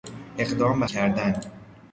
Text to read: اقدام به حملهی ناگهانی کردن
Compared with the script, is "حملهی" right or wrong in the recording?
wrong